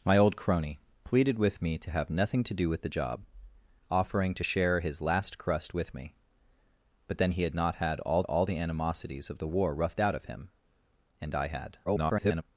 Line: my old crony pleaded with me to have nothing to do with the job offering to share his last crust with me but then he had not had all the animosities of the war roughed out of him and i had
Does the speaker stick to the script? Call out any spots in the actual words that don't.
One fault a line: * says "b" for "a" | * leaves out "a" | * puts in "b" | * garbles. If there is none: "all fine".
* puts in "all"
* garbles